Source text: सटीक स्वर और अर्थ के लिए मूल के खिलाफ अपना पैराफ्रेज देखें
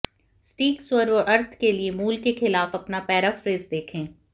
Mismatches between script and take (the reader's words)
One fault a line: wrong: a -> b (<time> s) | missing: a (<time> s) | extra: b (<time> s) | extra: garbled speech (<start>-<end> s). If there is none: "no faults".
no faults